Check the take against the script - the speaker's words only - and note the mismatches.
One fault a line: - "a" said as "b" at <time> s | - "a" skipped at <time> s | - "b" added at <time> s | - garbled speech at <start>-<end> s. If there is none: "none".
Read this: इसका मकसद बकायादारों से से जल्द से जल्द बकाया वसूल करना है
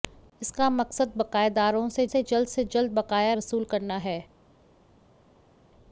none